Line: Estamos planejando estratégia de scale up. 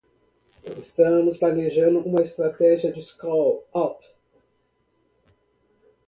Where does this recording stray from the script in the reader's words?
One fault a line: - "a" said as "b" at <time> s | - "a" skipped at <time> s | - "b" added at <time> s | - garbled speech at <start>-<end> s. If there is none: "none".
- "uma" added at 2.0 s